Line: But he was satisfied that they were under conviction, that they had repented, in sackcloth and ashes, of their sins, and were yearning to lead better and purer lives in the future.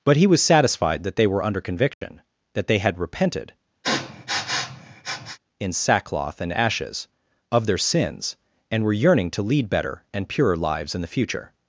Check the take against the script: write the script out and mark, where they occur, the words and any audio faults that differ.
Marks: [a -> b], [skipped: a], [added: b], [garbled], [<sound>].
But he was satisfied that they were under conviction, [dropout] that they had repented, [sniff] in sackcloth and ashes, of their sins, and were yearning to lead better and purer lives in the future.